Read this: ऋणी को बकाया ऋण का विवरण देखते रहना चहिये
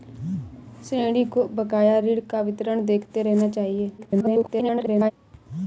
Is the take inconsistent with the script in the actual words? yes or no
yes